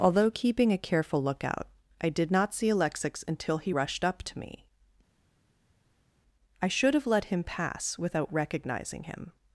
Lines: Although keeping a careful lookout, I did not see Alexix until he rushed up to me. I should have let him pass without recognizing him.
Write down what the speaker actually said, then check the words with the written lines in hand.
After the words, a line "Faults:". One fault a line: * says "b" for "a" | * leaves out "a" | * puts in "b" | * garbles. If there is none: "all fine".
Although keeping a careful lookout, I did not see Alexix until he rushed up to me. I should have let him pass without recognizing him.
Faults:
all fine